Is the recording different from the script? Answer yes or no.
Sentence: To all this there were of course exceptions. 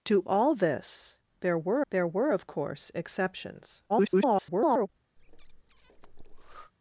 yes